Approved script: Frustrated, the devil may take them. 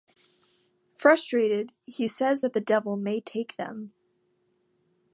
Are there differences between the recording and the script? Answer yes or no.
yes